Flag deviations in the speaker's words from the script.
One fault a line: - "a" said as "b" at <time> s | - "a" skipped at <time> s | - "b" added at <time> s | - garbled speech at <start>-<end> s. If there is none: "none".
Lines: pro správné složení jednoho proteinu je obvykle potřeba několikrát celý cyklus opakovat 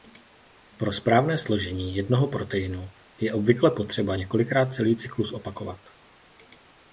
none